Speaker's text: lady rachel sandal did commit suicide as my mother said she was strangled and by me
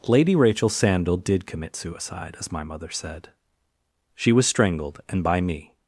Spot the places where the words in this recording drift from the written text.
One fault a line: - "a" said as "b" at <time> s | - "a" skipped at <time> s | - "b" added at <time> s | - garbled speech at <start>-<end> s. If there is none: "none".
none